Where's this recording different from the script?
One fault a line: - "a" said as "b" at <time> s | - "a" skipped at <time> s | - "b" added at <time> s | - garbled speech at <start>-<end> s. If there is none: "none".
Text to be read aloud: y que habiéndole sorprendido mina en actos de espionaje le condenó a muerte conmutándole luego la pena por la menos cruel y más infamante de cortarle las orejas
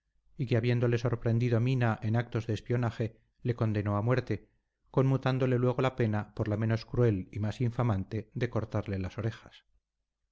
none